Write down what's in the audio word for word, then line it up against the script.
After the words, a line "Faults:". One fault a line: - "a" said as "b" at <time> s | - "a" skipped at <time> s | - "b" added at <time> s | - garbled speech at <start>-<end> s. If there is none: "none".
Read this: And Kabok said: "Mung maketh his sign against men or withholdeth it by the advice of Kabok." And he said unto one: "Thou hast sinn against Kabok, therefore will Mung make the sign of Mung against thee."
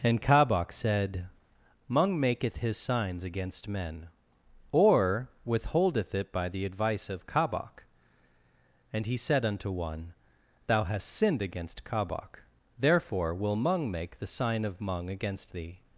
And Kabok said: "Mung maketh his signs against men or withholdeth it by the advice of Kabok." And he said unto one: "Thou hast sinned against Kabok, therefore will Mung make the sign of Mung against thee."
Faults:
- "sign" said as "signs" at 2.8 s
- "sinn" said as "sinned" at 11.1 s